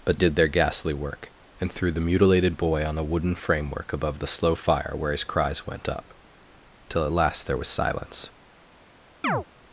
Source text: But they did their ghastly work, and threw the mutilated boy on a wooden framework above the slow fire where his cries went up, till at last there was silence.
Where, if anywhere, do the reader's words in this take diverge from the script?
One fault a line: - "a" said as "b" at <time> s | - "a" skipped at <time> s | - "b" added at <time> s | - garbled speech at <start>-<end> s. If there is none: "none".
- "they" skipped at 0.2 s